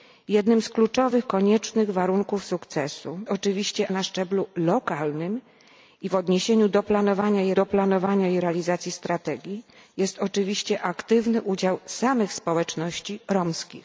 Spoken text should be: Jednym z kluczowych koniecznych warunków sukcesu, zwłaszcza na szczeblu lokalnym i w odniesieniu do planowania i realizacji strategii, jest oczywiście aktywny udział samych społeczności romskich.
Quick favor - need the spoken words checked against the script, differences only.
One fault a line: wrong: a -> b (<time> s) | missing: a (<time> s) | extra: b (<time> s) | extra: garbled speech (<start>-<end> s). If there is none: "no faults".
wrong: zwłaszcza -> oczywiście (3.3 s)
extra: do planowania i (7.5 s)